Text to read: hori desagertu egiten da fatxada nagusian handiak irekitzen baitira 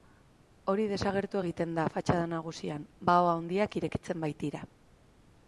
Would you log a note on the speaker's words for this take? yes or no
yes